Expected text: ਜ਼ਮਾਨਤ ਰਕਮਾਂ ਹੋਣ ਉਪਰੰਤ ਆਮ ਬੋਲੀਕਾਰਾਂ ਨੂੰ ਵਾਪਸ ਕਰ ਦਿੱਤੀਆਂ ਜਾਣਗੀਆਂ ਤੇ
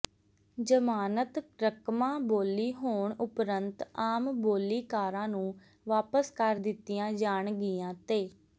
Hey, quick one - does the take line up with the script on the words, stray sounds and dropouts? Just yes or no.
no